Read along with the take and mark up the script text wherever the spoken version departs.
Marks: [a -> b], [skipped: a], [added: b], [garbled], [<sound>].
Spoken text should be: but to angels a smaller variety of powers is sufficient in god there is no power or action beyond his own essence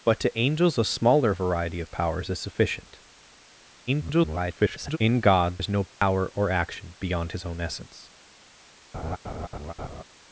but to angels a smaller variety of powers is sufficient [garbled] in god [skipped: there] is no power [dropout] or action beyond his own essence [laugh]